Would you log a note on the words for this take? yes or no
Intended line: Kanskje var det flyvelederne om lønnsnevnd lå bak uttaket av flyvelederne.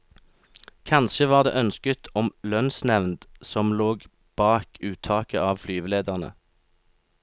yes